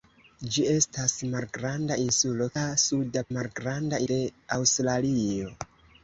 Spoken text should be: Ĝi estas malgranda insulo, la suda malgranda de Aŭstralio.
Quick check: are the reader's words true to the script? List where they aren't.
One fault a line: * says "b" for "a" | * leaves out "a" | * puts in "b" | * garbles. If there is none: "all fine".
all fine